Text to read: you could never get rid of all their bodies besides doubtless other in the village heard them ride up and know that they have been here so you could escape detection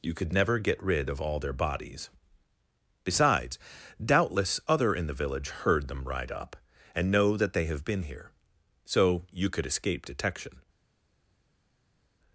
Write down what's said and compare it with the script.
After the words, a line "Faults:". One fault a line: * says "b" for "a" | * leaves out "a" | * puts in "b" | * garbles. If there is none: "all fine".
you could never get rid of all their bodies besides doubtless other in the village heard them ride up and know that they have been here so you could escape detection
Faults:
all fine